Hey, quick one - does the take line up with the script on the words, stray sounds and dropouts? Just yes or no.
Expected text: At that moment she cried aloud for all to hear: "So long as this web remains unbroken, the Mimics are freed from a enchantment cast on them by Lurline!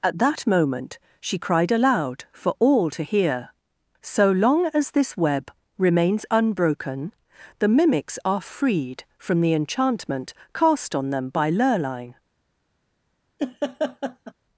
no